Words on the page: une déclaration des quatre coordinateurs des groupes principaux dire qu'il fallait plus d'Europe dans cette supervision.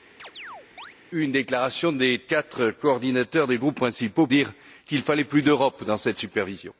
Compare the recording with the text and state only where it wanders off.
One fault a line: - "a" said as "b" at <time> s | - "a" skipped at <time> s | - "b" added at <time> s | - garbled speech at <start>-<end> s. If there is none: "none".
none